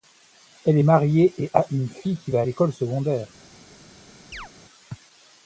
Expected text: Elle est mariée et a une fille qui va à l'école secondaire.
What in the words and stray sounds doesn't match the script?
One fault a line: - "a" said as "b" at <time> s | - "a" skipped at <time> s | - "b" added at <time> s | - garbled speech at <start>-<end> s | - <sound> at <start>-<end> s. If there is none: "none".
- chirp at 4.3-4.5 s